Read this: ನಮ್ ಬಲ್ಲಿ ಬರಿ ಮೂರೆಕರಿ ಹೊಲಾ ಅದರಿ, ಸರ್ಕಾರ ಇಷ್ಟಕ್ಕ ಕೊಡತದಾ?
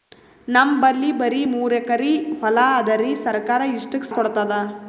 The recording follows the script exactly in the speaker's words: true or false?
true